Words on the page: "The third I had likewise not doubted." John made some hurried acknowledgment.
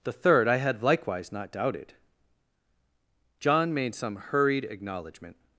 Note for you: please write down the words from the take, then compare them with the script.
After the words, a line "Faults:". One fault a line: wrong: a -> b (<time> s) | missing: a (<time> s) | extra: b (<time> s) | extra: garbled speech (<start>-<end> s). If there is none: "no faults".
"The third I had likewise not doubted." John made some hurried acknowledgment.
Faults:
no faults